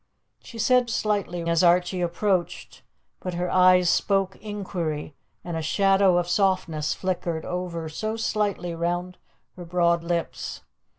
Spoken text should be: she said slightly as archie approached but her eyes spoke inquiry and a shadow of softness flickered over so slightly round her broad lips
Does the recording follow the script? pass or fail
pass